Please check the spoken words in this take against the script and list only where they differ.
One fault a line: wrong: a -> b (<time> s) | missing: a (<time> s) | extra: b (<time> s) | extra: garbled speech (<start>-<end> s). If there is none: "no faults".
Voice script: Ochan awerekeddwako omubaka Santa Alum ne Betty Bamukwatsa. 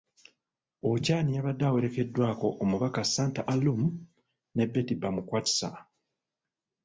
extra: yabadde (1.4 s)